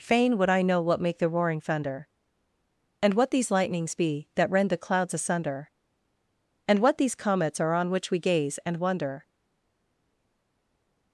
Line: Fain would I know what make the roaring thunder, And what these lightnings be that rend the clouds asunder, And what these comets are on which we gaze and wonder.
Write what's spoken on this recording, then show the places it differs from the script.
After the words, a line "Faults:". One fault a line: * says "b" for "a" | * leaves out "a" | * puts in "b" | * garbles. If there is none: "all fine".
Fain would I know what make the roaring thunder, And what these lightnings be that rend the clouds asunder, And what these comets are on which we gaze and wonder.
Faults:
all fine